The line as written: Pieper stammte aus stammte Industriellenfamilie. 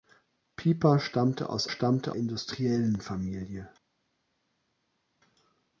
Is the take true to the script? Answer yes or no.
yes